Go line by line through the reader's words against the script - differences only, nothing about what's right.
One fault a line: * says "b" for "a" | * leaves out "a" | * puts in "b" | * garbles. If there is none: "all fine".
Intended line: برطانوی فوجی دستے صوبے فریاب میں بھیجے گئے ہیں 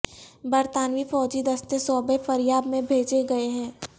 all fine